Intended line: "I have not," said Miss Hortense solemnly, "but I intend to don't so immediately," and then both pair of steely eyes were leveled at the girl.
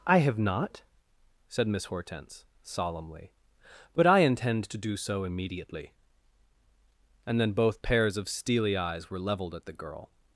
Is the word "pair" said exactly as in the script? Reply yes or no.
no